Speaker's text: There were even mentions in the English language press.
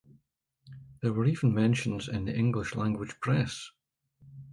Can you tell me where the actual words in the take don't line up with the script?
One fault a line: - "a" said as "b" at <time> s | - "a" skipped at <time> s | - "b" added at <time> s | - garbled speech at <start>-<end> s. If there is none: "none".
none